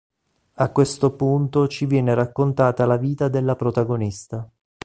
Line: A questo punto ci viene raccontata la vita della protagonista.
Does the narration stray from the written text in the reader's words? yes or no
no